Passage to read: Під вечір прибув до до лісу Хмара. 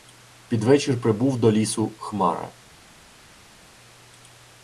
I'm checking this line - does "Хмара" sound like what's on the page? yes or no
yes